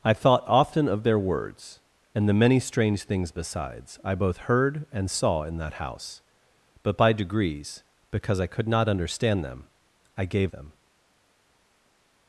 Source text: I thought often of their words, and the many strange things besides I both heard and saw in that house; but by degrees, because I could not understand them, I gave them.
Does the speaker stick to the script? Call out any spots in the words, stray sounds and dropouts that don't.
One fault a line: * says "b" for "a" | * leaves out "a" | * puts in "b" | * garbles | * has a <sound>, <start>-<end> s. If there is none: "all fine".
all fine